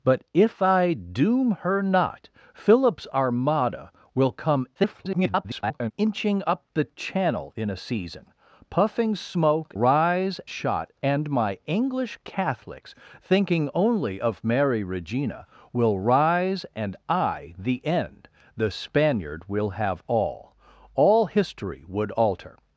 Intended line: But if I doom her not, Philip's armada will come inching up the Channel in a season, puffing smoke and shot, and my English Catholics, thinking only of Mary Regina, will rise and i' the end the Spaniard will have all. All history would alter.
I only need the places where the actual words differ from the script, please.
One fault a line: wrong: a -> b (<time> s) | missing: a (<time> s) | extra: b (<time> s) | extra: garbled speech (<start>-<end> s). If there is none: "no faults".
extra: garbled speech (4.7-5.9 s)
wrong: and -> rise (9.7 s)